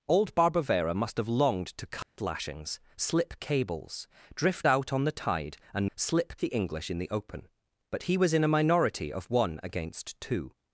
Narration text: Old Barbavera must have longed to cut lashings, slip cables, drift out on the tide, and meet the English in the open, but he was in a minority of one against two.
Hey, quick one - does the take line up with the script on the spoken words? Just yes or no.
no